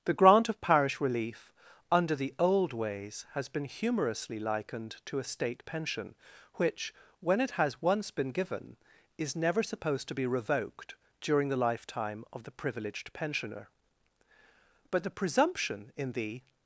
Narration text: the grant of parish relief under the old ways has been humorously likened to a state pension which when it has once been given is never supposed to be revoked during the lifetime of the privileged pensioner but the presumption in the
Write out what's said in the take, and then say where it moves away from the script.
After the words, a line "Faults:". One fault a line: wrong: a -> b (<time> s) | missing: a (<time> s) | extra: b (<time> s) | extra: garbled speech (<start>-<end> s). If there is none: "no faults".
the grant of parish relief under the old ways has been humorously likened to a state pension which when it has once been given is never supposed to be revoked during the lifetime of the privileged pensioner but the presumption in the
Faults:
no faults